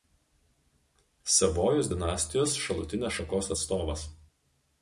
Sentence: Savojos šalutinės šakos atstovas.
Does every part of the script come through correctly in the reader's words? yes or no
no